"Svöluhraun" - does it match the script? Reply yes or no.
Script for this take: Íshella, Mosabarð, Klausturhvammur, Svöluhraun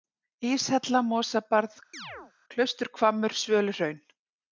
yes